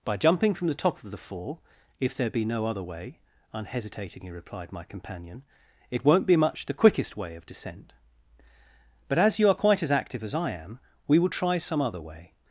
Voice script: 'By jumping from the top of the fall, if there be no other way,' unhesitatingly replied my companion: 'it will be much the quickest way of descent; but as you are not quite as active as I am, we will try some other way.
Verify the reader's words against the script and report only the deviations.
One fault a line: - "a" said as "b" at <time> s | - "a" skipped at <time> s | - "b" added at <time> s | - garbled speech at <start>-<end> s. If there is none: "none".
- "will" said as "won't" at 6.0 s
- "not" skipped at 9.6 s